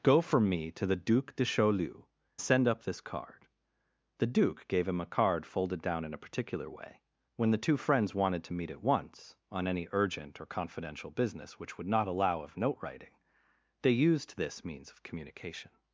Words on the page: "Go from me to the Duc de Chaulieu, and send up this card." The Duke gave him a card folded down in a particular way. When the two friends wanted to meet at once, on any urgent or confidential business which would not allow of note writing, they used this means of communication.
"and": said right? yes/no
no